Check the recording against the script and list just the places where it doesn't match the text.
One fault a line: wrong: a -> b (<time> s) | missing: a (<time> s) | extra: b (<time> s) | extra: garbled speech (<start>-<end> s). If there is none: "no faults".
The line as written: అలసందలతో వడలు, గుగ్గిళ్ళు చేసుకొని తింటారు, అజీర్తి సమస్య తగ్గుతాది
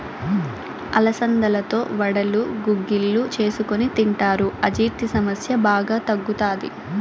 extra: బాగా (5.7 s)